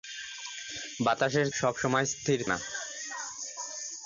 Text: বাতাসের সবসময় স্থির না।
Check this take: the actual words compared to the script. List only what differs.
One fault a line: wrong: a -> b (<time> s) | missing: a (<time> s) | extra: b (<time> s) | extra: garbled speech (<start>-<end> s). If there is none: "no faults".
no faults